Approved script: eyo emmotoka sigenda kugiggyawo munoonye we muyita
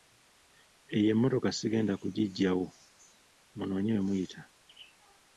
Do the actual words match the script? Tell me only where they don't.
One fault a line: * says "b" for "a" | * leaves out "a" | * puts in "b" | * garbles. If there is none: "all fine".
all fine